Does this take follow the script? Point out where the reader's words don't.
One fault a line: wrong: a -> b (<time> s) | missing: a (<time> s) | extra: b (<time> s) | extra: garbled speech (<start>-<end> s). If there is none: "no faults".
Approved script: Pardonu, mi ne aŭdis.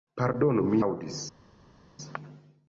missing: ne (0.8 s)